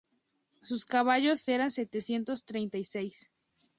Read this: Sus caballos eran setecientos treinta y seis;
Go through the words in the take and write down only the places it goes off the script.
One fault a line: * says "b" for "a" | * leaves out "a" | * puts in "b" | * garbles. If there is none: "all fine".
all fine